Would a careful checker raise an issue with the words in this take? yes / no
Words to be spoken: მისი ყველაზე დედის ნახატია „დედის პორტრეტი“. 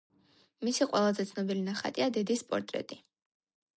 yes